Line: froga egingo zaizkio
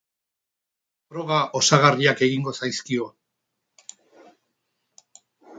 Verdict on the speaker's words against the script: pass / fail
fail